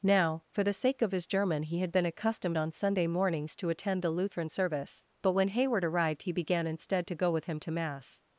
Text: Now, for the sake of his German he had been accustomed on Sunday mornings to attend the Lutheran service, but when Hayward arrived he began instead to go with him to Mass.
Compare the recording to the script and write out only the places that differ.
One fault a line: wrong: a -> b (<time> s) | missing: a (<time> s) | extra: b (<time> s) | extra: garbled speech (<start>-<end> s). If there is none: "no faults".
no faults